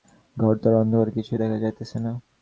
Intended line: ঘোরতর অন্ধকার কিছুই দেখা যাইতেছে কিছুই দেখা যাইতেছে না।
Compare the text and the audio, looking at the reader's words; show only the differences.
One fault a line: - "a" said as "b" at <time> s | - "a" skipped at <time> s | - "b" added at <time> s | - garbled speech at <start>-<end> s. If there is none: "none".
- "কিছুই দেখা যাইতেছে" skipped at 2.0 s